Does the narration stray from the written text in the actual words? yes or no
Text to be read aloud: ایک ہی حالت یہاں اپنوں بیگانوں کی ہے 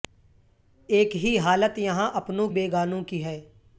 no